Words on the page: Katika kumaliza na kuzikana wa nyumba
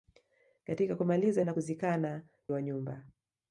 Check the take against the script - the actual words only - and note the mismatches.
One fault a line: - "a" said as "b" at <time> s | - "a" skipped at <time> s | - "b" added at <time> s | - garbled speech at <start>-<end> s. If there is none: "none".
none